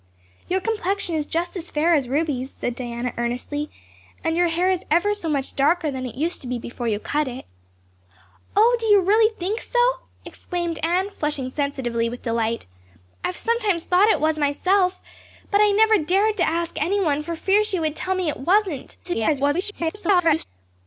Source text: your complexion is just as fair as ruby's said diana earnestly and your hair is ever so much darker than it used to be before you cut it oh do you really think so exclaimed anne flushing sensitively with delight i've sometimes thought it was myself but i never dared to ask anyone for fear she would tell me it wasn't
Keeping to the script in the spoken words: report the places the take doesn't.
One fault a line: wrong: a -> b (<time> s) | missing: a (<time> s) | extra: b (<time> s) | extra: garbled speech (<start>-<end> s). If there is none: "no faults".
extra: garbled speech (19.0-20.5 s)